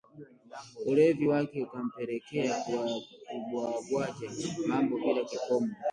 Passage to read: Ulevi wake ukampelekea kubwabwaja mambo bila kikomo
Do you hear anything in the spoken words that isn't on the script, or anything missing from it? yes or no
no